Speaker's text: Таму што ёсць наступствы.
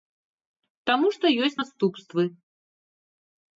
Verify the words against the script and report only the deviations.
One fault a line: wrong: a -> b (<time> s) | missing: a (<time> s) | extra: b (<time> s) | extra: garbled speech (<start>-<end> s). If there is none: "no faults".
no faults